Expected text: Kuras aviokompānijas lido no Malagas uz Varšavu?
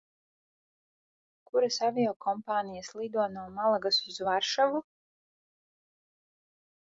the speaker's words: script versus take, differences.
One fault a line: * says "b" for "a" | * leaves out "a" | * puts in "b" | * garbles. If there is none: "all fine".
all fine